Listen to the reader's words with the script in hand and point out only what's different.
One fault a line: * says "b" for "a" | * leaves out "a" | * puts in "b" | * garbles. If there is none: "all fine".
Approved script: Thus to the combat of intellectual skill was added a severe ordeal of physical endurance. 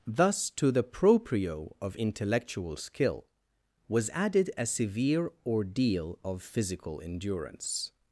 * says "proprio" for "combat"